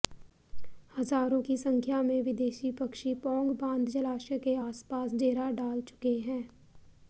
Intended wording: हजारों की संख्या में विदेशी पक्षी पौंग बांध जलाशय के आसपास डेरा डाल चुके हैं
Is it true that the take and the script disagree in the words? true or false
false